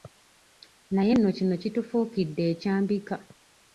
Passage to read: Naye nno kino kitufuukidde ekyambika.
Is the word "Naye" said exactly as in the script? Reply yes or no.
yes